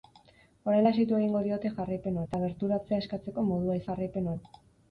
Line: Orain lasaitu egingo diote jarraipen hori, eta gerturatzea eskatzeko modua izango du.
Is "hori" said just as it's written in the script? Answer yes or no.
no